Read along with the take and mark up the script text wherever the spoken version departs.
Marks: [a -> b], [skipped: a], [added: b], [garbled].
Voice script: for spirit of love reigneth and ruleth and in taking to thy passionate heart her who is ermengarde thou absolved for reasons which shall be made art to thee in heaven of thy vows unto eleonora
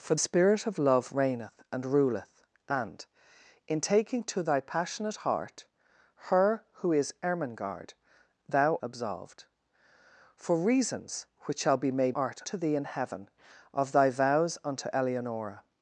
for spirit of love reigneth and ruleth and in taking to thy passionate heart her who is ermengarde thou absolved for reasons which shall be made art to thee in heaven of thy vows unto eleonora